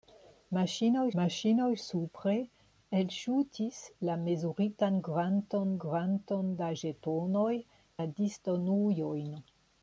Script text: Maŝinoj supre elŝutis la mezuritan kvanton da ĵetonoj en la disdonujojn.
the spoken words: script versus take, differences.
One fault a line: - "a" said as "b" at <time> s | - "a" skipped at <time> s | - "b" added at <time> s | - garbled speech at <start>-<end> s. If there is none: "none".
- "maŝinoj" added at 1.2 s
- "kvanton" added at 5.8 s
- "en" skipped at 7.5 s